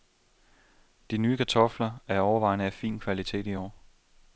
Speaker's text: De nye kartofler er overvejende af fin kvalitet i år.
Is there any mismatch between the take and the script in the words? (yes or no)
no